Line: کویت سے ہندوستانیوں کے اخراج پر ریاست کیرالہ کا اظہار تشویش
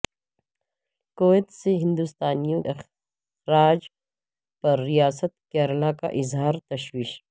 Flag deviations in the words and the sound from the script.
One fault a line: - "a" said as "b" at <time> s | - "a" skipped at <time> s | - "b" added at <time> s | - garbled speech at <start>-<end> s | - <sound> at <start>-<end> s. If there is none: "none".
- "کے" skipped at 2.6 s